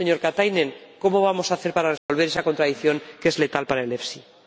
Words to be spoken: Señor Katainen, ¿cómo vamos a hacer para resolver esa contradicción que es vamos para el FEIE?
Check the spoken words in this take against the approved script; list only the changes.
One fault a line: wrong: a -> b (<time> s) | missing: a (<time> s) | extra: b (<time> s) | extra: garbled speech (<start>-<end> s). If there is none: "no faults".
wrong: vamos -> letal (3.4 s)